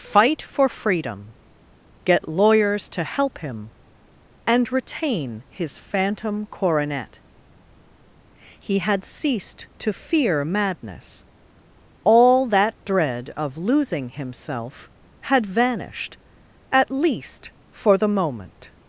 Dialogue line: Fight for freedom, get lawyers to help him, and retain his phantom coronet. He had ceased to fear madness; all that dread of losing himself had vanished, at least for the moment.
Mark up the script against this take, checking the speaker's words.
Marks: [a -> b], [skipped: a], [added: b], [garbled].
Fight for freedom, get lawyers to help him, and retain his phantom coronet. He had ceased to fear madness; all that dread of losing himself had vanished, at least for the moment.